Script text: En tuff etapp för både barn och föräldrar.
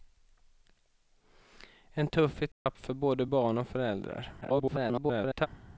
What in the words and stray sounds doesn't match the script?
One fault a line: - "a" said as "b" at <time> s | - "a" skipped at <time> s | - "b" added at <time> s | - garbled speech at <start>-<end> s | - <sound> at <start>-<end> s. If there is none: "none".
- dropout at 2.5-2.7 s
- garbled speech at 4.4-5.5 s